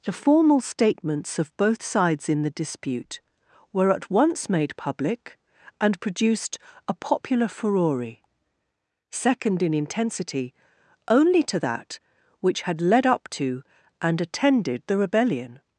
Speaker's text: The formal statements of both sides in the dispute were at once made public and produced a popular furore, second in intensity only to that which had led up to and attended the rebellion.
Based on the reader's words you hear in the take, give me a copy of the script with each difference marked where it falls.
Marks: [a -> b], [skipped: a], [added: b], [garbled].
The formal statements of both sides in the dispute were at once made public and produced a popular furore, second in intensity only to that which had led up to and attended the rebellion.